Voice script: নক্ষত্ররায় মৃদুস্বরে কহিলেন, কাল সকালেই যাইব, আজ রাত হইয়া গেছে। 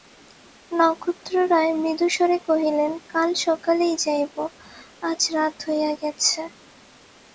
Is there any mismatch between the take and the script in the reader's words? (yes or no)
no